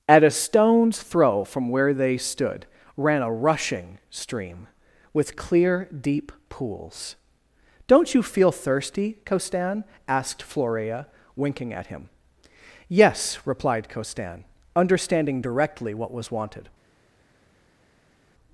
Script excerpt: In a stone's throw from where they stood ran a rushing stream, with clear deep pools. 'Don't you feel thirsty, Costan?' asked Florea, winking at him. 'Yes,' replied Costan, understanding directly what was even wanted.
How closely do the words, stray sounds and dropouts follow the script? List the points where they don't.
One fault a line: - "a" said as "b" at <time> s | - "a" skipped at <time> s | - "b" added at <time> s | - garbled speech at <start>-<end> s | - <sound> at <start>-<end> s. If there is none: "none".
- "In" said as "At" at 0.1 s
- "even" skipped at 16.3 s